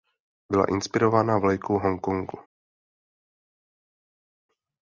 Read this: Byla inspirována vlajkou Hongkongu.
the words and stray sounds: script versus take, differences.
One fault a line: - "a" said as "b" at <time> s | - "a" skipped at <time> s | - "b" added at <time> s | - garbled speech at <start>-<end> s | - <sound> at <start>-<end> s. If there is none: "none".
none